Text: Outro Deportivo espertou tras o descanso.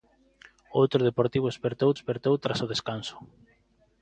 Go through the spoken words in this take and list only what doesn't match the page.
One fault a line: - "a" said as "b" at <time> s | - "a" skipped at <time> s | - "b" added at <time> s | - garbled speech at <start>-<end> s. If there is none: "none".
- "espertou" added at 1.9 s